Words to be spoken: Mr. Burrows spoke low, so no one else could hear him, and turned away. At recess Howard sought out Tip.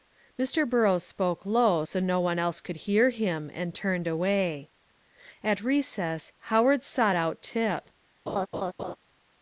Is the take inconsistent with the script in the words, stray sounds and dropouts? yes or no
yes